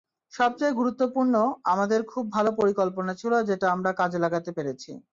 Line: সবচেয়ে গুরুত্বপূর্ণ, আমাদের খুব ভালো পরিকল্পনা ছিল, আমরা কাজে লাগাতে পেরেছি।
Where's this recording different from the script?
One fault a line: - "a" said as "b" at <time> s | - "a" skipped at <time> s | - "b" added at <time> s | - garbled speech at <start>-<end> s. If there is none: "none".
- "যেটা" added at 3.4 s